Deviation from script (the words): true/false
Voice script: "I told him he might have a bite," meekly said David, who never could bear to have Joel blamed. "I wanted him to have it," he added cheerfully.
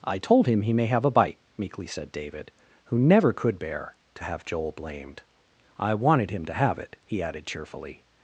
true